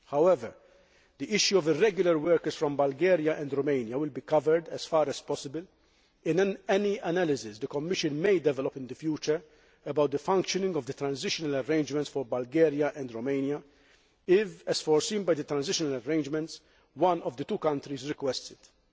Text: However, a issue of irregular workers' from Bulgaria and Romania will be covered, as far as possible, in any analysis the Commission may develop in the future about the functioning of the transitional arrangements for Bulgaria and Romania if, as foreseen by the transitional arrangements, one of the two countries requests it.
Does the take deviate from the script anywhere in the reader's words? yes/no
yes